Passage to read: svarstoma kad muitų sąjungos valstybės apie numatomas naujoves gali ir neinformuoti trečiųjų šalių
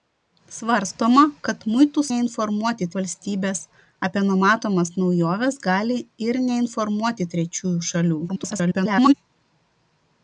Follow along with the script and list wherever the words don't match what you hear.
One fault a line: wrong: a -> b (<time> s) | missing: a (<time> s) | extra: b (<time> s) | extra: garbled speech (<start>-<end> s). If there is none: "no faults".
wrong: sąjungos -> neinformuoti (2.1 s)
extra: garbled speech (8.3-9.1 s)